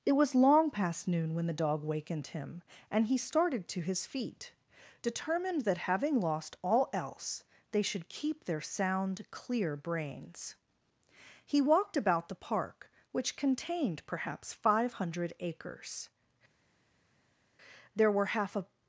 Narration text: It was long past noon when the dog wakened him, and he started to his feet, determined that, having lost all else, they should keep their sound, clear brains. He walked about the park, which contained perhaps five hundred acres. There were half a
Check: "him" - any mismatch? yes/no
no